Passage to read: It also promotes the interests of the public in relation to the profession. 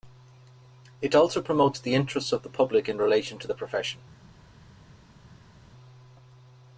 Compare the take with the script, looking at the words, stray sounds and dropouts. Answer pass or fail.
pass